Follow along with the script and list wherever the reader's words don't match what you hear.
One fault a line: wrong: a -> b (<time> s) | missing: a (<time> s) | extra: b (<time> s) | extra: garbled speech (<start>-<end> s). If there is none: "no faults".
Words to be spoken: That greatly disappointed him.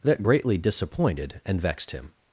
extra: and vexed (1.4 s)